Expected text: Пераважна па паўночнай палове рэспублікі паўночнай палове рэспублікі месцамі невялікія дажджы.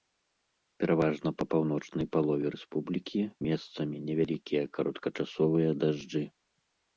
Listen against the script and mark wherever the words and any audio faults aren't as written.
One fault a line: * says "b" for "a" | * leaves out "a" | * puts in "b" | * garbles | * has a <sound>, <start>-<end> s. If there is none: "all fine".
* leaves out "паўночнай палове рэспублікі"
* puts in "кароткачасовыя"